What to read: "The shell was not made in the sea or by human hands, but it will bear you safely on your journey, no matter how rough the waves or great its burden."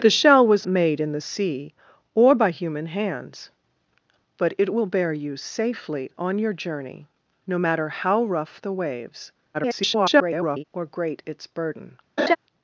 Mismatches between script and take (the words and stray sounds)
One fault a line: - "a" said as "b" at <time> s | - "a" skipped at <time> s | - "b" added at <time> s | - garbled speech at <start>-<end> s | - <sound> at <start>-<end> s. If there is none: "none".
- "not" skipped at 0.7 s
- garbled speech at 9.5-10.6 s
- laugh at 12.2-12.4 s